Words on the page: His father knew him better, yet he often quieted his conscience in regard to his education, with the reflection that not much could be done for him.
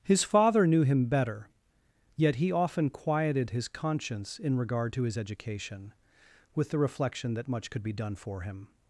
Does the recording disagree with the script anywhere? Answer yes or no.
yes